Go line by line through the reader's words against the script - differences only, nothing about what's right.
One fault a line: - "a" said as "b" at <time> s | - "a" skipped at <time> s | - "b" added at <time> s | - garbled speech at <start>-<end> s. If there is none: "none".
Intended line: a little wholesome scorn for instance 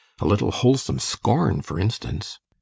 none